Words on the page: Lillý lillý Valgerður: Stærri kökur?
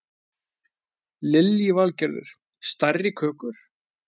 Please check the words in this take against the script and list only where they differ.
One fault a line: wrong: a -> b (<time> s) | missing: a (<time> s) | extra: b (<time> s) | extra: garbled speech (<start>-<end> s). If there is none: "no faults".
missing: lillý (1.7 s)